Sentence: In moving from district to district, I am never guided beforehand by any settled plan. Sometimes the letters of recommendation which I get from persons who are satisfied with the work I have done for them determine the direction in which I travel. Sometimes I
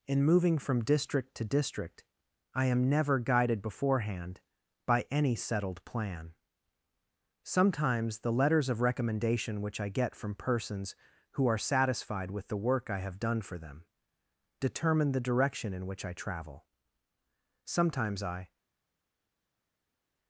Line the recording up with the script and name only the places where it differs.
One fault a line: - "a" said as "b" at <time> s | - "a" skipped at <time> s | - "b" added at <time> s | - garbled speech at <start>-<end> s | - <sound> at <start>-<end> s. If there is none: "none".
none